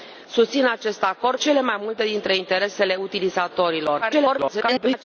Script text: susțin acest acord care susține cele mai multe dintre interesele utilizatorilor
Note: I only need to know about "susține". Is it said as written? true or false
false